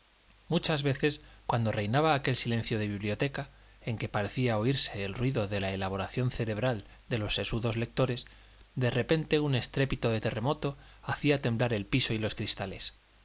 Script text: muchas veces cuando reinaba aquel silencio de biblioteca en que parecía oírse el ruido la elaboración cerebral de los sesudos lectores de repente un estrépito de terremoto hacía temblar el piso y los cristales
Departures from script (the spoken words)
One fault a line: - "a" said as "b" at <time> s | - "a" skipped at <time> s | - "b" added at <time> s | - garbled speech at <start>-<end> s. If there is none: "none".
- "de" added at 5.5 s